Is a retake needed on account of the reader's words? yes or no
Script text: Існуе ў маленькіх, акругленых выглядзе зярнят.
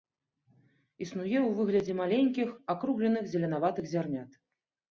yes